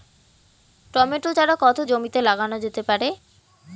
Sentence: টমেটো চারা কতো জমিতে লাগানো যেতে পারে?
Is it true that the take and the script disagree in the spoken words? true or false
false